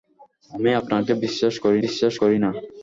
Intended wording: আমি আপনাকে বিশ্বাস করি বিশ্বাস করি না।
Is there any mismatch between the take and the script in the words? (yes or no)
no